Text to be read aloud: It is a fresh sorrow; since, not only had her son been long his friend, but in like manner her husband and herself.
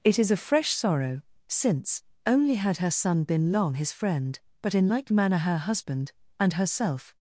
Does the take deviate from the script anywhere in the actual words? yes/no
yes